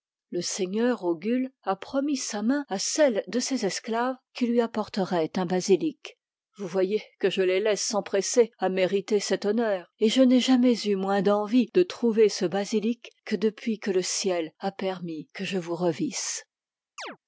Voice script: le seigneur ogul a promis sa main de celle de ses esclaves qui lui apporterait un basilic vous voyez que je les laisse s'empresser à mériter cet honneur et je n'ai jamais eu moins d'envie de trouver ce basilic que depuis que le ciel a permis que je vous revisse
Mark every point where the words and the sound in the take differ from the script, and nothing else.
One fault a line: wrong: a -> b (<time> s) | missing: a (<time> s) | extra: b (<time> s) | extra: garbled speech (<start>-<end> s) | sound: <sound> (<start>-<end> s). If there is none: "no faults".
wrong: de -> à (2.7 s)
sound: chirp (17.0-17.2 s)